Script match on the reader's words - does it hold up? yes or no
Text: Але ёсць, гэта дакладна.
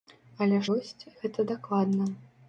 yes